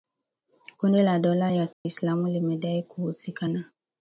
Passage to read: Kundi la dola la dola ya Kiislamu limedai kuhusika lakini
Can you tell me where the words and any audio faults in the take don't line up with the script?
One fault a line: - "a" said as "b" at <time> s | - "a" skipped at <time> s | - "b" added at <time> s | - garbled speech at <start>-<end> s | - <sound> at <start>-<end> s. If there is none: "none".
- "la dola" skipped at 1.5 s
- dropout at 1.7-1.9 s
- "lakini" said as "na" at 3.5 s